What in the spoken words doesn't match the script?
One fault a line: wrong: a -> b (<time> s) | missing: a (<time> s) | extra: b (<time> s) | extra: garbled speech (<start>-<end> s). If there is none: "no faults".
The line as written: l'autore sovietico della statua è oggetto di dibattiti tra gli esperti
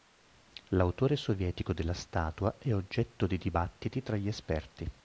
no faults